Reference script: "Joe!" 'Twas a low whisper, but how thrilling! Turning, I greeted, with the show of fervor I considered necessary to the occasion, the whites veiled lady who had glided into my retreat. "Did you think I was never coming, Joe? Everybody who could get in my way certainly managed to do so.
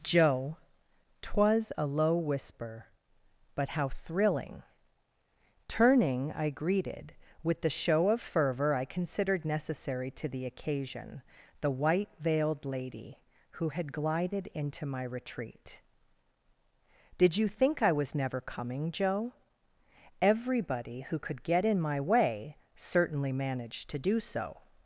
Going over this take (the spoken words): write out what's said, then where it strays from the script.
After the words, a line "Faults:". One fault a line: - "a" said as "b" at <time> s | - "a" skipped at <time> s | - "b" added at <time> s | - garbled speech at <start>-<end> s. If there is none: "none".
"Joe!" 'Twas a low whisper, but how thrilling! Turning, I greeted, with the show of fervor I considered necessary to the occasion, the white veiled lady who had glided into my retreat. "Did you think I was never coming, Joe? Everybody who could get in my way certainly managed to do so.
Faults:
- "whites" said as "white" at 11.7 s